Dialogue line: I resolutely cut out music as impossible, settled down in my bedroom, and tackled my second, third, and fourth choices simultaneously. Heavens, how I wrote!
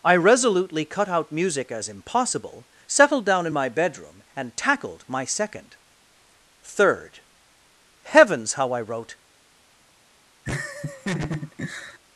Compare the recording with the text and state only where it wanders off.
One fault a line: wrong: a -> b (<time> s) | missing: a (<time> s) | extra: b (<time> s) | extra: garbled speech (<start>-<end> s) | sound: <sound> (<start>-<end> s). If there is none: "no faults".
missing: and fourth choices simultaneously (7.2 s)
sound: laugh (10.5-12.0 s)